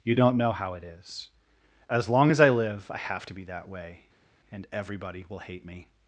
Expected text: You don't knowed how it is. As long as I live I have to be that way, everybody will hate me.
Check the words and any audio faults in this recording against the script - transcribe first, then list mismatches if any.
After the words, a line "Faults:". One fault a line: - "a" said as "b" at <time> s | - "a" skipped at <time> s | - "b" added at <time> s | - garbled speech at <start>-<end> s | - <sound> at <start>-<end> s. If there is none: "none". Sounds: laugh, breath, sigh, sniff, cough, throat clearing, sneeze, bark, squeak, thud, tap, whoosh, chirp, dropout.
You don't know how it is. As long as I live I have to be that way, and everybody will hate me.
Faults:
- "knowed" said as "know" at 0.4 s
- "and" added at 4.5 s